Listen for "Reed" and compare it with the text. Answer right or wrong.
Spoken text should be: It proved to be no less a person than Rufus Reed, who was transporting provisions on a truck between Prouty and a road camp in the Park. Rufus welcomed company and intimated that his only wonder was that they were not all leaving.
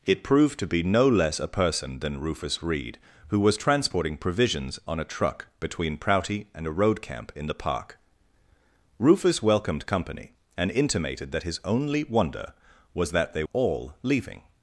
right